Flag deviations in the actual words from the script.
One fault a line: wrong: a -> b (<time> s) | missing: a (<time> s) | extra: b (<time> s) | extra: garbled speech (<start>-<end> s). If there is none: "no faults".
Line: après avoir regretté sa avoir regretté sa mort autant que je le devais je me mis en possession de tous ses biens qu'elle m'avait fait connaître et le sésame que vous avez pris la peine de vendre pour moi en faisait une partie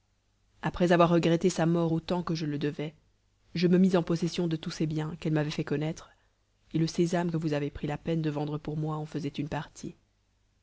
missing: avoir regretté sa (1.7 s)